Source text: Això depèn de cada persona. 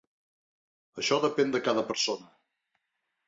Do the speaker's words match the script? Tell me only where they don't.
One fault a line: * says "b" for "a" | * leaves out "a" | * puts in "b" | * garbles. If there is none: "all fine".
all fine